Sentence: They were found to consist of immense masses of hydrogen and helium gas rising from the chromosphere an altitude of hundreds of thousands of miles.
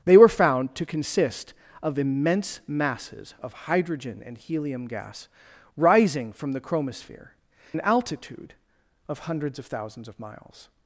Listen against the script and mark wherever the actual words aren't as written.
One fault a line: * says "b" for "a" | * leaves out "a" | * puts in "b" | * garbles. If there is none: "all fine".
all fine